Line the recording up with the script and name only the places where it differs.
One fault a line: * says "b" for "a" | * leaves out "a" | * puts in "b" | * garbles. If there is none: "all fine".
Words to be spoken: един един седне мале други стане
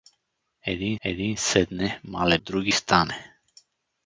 all fine